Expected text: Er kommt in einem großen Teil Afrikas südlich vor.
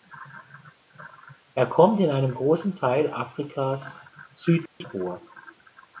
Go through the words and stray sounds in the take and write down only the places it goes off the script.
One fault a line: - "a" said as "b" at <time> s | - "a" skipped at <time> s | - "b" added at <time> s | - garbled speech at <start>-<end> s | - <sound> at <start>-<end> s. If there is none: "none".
- dropout at 4.7-4.8 s